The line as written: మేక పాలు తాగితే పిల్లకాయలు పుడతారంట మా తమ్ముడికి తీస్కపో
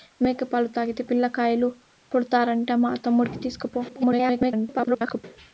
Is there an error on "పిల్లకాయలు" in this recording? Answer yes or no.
no